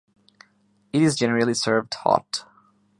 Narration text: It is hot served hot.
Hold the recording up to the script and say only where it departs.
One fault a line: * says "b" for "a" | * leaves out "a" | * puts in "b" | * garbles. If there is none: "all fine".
* says "generally" for "hot"